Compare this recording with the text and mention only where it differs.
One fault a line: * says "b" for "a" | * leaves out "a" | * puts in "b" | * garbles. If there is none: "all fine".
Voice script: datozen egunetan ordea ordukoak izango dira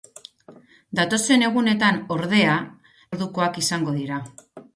all fine